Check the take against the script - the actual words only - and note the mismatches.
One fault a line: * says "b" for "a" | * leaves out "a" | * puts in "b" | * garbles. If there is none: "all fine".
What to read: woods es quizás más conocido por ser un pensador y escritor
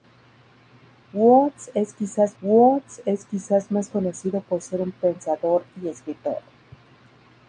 * puts in "woods es quizás"